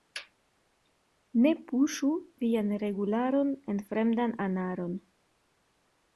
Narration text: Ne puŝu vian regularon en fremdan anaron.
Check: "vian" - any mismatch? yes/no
no